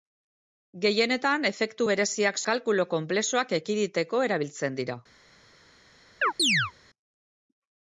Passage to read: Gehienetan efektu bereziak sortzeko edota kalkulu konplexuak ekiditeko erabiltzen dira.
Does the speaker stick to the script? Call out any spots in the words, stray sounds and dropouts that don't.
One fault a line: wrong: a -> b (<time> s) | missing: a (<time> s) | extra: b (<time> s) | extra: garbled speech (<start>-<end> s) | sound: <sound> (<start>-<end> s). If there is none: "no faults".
missing: sortzeko edota (2.4 s)
sound: chirp (6.2-6.7 s)